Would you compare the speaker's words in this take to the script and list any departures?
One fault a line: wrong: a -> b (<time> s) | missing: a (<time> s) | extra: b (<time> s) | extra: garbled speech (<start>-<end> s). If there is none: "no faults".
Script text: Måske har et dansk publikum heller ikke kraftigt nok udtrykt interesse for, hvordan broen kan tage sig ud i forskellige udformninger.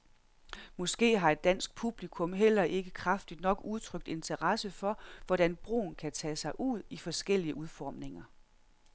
no faults